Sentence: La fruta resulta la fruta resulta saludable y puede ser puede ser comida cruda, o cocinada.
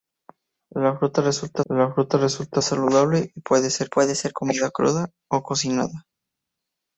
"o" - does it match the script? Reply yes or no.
yes